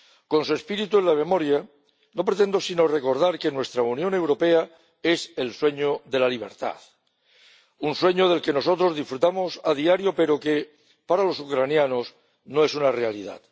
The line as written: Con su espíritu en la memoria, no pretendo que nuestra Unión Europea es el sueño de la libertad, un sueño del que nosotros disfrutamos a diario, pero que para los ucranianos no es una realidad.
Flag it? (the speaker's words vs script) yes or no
yes